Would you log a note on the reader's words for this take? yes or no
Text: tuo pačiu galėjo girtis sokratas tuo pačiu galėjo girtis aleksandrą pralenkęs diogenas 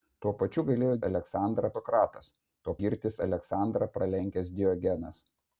yes